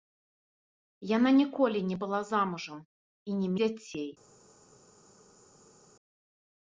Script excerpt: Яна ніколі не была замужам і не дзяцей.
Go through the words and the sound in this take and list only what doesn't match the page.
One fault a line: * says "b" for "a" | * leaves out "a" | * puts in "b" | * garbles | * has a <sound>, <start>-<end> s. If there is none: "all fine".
all fine